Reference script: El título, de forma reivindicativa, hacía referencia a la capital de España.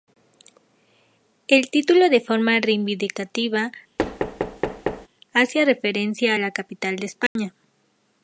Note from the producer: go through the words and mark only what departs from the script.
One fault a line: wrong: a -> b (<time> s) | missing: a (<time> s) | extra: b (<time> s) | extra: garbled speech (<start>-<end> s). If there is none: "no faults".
no faults